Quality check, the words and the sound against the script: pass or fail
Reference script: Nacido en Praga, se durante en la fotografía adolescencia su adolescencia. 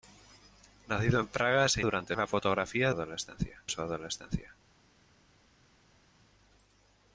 pass